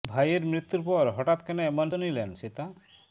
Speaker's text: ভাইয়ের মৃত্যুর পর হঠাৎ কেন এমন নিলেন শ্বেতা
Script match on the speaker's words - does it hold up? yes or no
yes